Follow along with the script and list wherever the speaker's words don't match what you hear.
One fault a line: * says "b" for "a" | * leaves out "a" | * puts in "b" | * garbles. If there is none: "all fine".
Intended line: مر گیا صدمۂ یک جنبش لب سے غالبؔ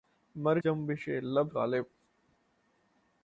* leaves out "گیا صدمۂ یک"
* leaves out "سے"